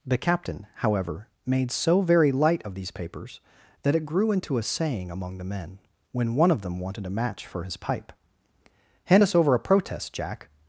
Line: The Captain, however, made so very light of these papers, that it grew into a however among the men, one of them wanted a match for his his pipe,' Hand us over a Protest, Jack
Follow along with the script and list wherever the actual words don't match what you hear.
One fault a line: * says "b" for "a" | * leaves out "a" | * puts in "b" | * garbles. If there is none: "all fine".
* says "saying" for "however"
* puts in "when"
* leaves out "his"